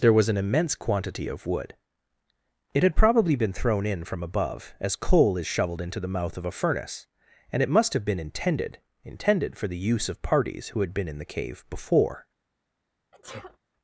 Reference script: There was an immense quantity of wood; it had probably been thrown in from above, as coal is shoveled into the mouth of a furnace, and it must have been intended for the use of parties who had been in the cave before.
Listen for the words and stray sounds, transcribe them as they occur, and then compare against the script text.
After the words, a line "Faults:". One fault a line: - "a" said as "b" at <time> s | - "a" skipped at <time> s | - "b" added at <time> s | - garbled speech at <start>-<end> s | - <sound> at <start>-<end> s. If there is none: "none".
There was an immense quantity of wood; it had probably been thrown in from above, as coal is shoveled into the mouth of a furnace, and it must have been intended intended for the use of parties who had been in the cave before.
Faults:
- "intended" added at 9.0 s
- sneeze at 13.1-13.6 s